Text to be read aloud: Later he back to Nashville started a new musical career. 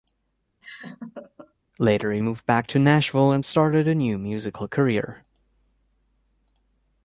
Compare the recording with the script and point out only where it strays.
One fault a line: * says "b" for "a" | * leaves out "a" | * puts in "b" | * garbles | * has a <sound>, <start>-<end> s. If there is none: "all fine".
* has a laugh, 0.6-1.5 s
* puts in "moved"
* puts in "and"